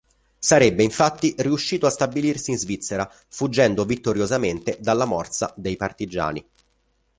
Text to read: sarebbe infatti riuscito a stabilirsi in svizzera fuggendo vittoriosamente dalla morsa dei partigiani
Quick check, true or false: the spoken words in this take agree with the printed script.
true